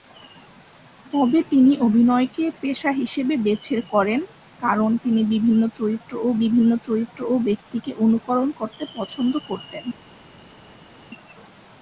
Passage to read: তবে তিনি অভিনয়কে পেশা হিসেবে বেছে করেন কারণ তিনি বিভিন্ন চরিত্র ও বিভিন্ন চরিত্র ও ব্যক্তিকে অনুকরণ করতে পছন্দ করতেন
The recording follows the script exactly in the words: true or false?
true